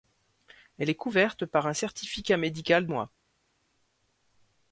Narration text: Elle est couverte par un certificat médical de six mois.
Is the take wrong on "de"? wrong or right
wrong